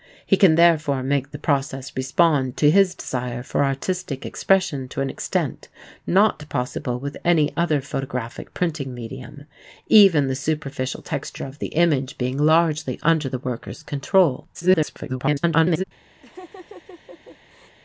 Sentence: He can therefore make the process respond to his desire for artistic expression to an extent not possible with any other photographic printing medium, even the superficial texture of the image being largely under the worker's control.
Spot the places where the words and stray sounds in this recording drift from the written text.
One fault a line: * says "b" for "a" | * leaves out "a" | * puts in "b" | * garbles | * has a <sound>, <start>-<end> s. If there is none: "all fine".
* garbles
* has a laugh, 16.2-17.8 s